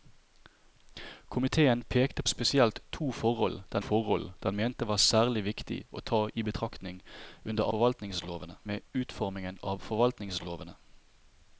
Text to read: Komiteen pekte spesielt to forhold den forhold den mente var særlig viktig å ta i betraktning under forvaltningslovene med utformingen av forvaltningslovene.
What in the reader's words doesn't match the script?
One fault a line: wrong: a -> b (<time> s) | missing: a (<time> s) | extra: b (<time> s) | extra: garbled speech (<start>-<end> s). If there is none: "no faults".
no faults